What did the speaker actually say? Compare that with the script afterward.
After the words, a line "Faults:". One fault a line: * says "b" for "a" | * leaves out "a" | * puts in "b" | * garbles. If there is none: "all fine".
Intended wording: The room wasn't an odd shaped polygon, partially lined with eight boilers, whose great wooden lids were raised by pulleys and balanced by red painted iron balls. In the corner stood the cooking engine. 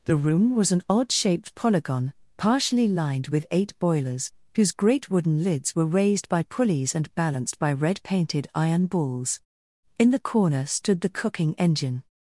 The room was an odd shaped polygon, partially lined with eight boilers, whose great wooden lids were raised by pulleys and balanced by red painted iron balls. In the corner stood the cooking engine.
Faults:
* says "was" for "wasn't"